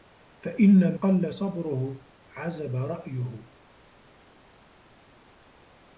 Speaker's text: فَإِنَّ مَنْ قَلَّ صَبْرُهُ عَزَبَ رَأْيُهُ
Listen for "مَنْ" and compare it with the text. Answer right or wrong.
wrong